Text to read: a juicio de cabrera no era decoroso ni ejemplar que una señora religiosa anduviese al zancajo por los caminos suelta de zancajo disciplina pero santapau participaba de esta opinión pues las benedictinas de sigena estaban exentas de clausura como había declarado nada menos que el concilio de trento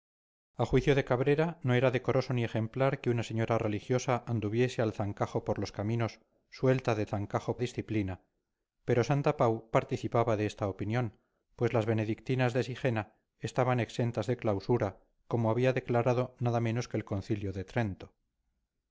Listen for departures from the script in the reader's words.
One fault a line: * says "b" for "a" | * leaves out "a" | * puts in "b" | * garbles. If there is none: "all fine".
all fine